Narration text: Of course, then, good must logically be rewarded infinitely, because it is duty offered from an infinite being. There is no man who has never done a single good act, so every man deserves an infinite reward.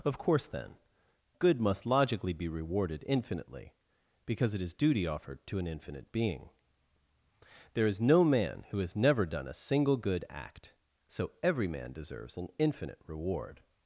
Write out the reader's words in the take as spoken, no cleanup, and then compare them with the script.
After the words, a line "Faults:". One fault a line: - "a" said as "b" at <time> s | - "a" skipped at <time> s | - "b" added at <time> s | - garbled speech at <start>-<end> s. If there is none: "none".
Of course, then, good must logically be rewarded infinitely, because it is duty offered to an infinite being. There is no man who has never done a single good act, so every man deserves an infinite reward.
Faults:
- "from" said as "to" at 5.5 s